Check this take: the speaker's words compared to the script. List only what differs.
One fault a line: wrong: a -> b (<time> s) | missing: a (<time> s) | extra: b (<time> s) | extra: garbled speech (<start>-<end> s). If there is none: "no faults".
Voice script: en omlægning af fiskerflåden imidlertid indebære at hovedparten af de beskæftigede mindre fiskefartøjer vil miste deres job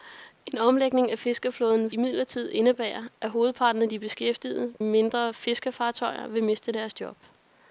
no faults